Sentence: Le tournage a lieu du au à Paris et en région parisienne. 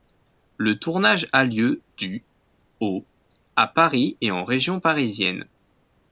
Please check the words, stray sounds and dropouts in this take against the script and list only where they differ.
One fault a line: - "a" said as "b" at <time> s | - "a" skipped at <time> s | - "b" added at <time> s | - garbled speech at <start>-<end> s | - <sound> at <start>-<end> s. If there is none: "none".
none